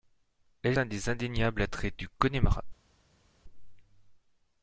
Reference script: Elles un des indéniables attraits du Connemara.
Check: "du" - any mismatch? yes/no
no